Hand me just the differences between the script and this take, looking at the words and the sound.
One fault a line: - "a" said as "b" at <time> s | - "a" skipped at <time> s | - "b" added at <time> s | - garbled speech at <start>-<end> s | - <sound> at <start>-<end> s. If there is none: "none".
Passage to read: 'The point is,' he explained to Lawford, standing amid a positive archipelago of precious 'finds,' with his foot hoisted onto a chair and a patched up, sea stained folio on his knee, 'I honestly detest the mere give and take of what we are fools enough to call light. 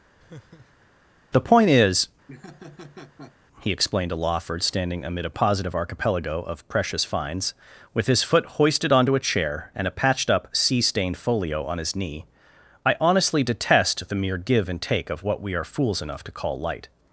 - laugh at 0.2-0.9 s
- laugh at 2.3-3.3 s